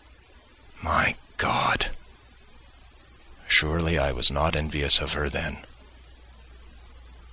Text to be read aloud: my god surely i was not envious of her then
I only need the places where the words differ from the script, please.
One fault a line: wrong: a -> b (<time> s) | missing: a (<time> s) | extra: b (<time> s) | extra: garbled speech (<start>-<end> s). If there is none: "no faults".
no faults